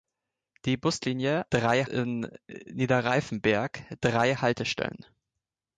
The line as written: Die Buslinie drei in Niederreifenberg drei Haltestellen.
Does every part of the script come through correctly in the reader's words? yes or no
yes